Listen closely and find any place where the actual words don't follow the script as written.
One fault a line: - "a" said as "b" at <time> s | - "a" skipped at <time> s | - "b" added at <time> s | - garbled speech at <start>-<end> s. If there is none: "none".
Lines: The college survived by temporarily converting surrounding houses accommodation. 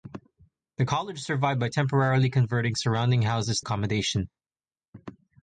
none